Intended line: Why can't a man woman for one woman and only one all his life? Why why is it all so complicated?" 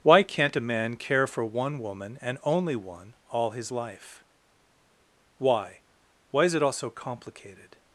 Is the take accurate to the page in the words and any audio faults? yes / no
no